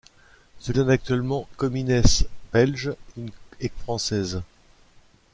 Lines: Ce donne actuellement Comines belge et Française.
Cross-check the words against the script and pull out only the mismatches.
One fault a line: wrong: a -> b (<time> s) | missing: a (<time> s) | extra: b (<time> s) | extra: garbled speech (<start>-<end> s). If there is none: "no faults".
no faults